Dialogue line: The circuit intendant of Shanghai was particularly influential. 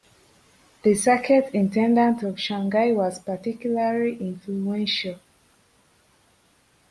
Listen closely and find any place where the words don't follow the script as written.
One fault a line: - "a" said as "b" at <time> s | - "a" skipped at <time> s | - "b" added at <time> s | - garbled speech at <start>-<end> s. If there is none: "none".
none